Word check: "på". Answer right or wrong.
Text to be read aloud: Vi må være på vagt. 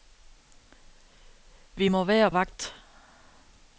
wrong